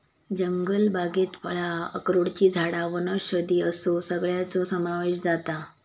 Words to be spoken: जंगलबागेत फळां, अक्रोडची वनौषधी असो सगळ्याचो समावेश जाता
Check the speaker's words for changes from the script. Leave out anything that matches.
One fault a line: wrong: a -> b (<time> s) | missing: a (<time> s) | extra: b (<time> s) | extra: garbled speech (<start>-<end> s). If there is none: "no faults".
extra: झाडां (2.5 s)